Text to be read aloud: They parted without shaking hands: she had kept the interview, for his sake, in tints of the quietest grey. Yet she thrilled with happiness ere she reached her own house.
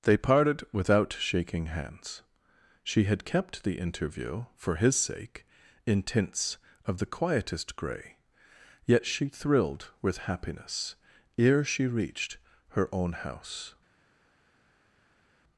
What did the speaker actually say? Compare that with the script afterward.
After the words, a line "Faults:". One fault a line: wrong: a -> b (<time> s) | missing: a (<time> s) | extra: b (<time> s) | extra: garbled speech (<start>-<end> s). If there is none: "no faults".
They parted without shaking hands: she had kept the interview, for his sake, in tints of the quietest grey. Yet she thrilled with happiness ere she reached her own house.
Faults:
no faults